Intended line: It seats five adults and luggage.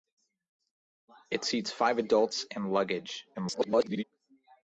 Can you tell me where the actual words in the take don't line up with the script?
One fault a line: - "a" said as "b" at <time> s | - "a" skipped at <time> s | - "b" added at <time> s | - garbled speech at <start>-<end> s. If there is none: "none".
- garbled speech at 3.3-4.0 s